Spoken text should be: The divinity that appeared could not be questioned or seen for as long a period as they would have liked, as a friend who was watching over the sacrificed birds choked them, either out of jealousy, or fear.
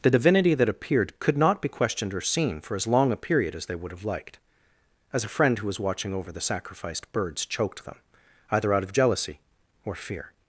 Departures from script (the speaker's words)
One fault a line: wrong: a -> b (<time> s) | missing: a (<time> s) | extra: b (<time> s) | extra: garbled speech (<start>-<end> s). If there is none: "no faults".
no faults